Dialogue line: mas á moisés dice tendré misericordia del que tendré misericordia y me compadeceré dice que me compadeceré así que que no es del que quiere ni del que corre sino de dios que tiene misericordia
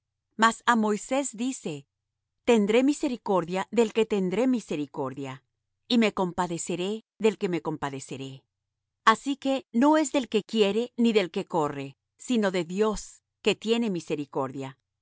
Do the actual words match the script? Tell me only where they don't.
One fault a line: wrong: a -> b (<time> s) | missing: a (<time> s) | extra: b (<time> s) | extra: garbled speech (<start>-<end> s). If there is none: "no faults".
wrong: dice -> del (7.2 s)
missing: que (9.7 s)